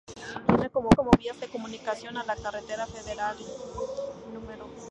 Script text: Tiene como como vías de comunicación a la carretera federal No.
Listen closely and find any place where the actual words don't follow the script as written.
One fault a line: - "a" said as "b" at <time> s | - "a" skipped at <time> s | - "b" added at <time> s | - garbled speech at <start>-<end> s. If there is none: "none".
none